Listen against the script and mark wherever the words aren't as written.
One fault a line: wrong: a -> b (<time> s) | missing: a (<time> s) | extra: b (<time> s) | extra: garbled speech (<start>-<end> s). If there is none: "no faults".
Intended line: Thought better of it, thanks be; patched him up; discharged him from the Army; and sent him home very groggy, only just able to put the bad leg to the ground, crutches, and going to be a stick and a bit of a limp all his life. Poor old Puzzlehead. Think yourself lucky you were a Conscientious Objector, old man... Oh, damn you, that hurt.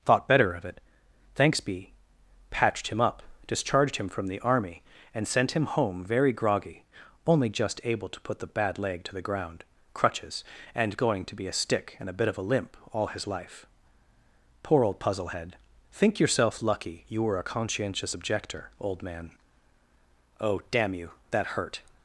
no faults